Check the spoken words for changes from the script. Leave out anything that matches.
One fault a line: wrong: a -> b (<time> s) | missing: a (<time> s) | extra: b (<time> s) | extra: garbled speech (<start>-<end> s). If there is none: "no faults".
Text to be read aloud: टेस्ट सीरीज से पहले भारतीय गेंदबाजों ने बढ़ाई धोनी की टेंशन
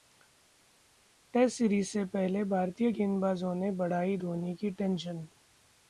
no faults